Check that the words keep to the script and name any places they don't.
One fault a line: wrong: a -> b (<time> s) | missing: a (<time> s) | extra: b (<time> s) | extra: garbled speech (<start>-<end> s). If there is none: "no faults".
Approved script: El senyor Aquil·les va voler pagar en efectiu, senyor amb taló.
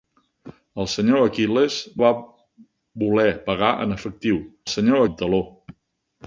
no faults